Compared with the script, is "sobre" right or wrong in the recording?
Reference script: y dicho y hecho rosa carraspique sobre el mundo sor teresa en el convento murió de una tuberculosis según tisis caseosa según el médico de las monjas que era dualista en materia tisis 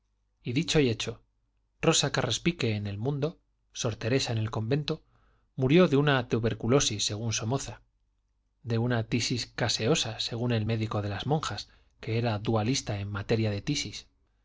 wrong